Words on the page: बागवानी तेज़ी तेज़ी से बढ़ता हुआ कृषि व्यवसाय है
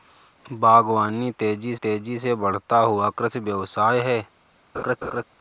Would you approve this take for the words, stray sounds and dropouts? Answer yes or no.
no